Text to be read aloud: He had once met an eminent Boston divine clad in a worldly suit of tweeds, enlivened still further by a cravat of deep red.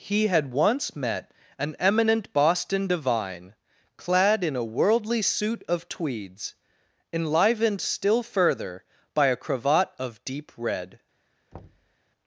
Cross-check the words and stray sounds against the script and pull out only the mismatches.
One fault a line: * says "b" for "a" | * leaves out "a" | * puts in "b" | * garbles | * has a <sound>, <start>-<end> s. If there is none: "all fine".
* has a thud, 11.5-12.0 s